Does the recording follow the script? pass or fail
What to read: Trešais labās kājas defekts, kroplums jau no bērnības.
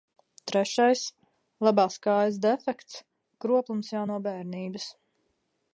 pass